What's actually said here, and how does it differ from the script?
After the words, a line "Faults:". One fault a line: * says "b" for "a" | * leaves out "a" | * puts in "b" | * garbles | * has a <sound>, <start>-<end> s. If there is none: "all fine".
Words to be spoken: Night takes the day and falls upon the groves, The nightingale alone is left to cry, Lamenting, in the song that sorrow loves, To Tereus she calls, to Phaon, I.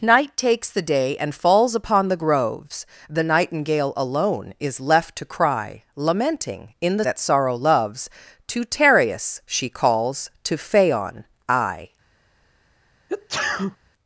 Night takes the day and falls upon the groves, The nightingale alone is left to cry, Lamenting, in the that sorrow loves, To Tereus she calls, to Phaon, I.
Faults:
* leaves out "song"
* has a sneeze, 13.1-13.8 s